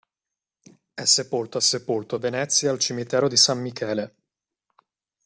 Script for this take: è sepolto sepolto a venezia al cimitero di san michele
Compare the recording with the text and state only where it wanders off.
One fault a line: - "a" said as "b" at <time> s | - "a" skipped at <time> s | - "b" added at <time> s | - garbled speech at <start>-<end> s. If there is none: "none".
none